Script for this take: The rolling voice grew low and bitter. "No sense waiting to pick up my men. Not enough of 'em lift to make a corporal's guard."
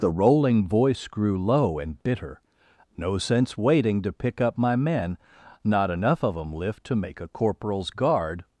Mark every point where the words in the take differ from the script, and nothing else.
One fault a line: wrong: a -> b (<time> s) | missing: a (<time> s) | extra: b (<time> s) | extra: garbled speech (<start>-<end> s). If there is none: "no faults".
no faults